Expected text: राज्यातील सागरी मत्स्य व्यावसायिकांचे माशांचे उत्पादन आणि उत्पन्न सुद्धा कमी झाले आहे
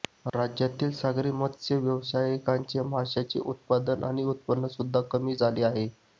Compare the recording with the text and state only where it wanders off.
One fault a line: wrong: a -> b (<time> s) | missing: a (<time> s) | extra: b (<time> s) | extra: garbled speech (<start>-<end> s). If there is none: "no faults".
no faults